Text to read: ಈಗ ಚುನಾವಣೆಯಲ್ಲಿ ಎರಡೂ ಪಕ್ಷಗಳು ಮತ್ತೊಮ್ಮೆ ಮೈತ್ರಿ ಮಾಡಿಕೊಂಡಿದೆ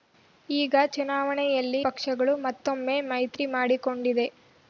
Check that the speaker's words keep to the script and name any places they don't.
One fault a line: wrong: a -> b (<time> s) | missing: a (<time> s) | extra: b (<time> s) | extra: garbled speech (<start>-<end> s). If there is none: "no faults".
missing: ಎರಡೂ (1.8 s)